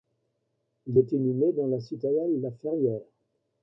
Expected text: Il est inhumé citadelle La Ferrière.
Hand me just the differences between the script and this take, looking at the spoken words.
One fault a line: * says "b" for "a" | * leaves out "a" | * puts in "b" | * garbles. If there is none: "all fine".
* puts in "dans la"